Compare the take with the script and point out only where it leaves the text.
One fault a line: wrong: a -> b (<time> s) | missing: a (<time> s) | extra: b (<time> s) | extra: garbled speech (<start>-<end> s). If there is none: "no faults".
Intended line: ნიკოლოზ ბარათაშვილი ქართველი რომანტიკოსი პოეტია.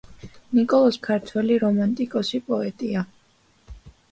missing: ბარათაშვილი (1.0 s)